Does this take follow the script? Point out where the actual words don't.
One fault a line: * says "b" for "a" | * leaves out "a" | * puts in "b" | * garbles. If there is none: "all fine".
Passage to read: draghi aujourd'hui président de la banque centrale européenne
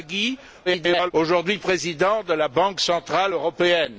* garbles